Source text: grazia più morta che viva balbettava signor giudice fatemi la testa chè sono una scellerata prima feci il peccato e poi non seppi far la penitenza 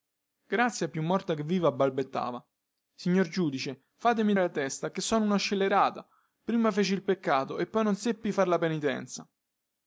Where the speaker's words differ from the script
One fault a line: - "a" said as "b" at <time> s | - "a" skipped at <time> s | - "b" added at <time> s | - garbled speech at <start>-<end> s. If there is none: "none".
none